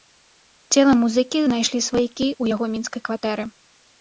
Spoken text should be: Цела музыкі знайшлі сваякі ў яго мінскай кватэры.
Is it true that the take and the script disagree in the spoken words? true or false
false